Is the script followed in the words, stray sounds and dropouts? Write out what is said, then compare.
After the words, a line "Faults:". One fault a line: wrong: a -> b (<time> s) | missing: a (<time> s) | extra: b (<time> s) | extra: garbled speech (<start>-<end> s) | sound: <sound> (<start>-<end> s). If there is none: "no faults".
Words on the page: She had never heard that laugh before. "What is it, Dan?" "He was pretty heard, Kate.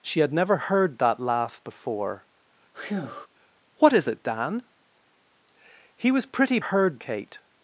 She had never heard that laugh before. "What is it, Dan?" "He was pretty heard, Kate.
Faults:
sound: breath (2.7-3.3 s)